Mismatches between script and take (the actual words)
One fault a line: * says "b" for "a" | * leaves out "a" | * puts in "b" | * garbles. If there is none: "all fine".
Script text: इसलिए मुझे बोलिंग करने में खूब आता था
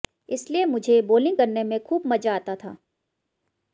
* puts in "मजा"